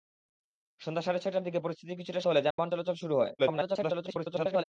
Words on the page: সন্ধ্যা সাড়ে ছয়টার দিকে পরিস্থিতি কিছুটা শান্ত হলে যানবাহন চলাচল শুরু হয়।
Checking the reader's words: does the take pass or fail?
fail